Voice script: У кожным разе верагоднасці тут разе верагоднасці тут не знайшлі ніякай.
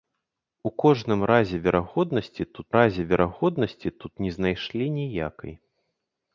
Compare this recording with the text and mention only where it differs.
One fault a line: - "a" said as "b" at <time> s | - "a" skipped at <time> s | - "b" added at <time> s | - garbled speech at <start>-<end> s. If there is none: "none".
none